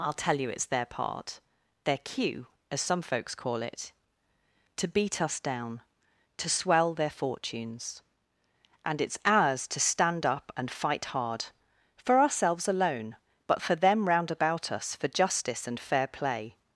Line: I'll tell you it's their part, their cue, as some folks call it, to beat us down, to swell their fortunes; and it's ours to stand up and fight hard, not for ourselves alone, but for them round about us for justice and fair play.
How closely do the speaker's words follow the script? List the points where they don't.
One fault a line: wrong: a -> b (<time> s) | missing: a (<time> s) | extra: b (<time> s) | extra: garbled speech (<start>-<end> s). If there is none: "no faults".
missing: not (11.4 s)